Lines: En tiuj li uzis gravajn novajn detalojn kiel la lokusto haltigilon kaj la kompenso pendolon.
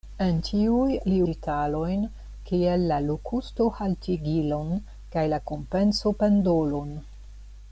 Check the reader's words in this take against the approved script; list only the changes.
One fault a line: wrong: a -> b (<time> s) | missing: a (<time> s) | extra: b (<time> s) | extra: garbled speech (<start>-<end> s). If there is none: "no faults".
missing: uzis gravajn novajn (1.2 s)